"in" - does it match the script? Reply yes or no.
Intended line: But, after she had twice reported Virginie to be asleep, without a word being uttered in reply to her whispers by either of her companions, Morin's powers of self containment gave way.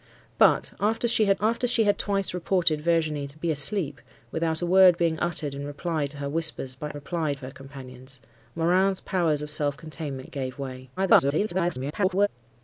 yes